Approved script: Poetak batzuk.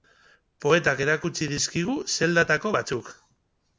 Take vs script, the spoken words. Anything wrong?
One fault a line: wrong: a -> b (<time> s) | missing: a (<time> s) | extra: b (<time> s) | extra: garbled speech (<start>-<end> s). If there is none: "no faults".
extra: erakutsi dizkigu zeldatako (1.1 s)